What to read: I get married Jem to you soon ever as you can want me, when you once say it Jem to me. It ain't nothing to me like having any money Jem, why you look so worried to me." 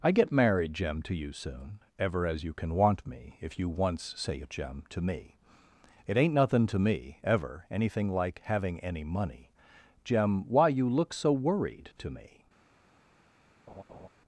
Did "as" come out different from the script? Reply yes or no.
no